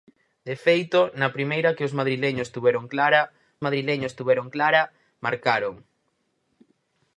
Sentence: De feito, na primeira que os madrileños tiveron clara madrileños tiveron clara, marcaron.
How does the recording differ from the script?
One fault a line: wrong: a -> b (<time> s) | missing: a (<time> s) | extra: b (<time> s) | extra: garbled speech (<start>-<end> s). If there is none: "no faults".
no faults